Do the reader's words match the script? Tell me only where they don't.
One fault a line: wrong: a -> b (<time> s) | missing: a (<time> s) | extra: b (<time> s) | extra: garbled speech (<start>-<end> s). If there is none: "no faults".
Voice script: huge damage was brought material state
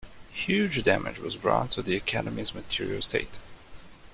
extra: to the academy's (1.7 s)